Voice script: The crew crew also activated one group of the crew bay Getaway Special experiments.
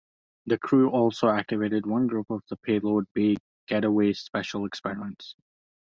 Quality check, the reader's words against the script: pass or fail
fail